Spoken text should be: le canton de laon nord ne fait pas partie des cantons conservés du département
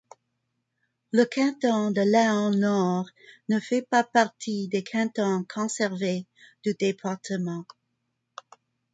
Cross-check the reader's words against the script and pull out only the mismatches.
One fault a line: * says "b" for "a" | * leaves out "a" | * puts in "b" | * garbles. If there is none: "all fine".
all fine